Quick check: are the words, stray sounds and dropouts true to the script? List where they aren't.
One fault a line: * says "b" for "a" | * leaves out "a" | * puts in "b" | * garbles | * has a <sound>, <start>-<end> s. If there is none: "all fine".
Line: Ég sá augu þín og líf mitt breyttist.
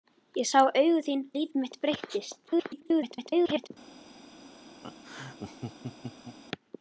* leaves out "og"
* garbles
* has a laugh, 4.8-6.4 s